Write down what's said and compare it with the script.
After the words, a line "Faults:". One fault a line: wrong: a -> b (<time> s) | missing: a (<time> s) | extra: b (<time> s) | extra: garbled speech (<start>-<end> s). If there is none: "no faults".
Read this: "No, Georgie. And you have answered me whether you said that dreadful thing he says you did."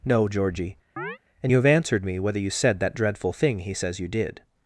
"No, Georgie. And you have answered me whether you said that dreadful thing he says you did."
Faults:
no faults